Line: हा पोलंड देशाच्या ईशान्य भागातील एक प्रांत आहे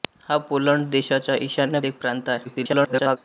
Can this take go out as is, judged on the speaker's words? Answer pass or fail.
fail